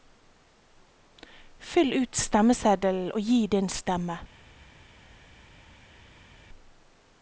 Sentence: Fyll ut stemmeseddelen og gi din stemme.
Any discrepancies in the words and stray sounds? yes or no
no